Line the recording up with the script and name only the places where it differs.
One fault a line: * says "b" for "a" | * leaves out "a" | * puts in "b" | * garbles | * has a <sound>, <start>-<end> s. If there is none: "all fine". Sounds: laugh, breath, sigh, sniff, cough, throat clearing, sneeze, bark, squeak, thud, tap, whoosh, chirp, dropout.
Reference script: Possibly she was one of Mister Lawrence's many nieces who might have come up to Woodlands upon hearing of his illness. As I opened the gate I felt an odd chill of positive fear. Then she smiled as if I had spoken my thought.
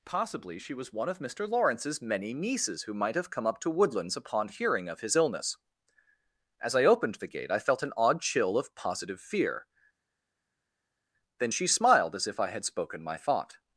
all fine